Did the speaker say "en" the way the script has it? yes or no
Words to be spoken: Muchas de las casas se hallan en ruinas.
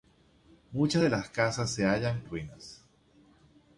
no